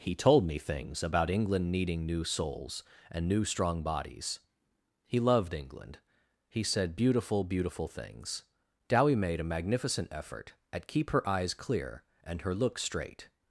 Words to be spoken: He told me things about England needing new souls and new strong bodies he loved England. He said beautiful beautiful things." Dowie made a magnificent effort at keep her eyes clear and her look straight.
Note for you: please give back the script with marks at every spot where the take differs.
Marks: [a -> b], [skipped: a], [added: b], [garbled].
He told me things about England needing new souls and new strong bodies he loved England. He said beautiful beautiful things." Dowie made a magnificent effort at keep her eyes clear and her look straight.